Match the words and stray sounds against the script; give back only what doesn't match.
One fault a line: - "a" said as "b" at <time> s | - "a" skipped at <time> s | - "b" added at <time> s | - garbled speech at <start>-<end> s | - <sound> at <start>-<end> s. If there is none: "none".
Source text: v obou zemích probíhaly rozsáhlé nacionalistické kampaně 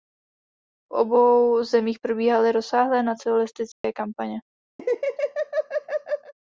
- dropout at 3.7-3.8 s
- laugh at 4.8-6.3 s